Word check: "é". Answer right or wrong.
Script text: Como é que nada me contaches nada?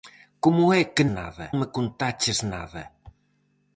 right